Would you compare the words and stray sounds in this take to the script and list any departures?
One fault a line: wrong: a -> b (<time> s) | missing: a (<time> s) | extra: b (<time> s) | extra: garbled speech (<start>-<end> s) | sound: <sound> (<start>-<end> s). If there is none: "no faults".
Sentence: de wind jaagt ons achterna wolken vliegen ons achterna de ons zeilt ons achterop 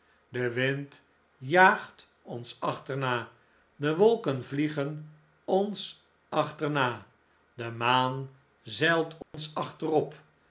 extra: de (3.8 s)
wrong: ons -> maan (7.7 s)
sound: dropout (9.2-9.3 s)